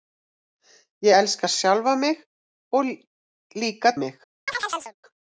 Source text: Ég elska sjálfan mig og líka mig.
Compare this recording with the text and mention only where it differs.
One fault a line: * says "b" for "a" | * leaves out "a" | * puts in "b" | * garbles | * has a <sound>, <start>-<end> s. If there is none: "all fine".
* has a chirp, 4.5-4.9 s